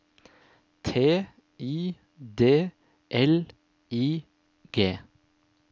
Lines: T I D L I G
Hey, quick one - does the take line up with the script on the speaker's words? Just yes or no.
yes